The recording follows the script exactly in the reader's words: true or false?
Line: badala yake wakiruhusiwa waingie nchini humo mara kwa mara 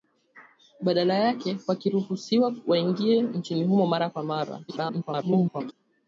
false